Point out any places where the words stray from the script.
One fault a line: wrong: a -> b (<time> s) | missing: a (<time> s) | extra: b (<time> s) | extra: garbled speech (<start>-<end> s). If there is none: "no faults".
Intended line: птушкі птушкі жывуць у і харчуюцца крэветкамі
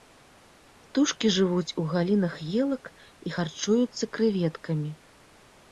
missing: птушкі (1.3 s)
extra: галінах елак (1.9 s)